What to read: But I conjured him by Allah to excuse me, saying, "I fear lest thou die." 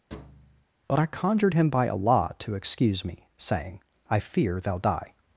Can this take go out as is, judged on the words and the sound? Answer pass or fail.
fail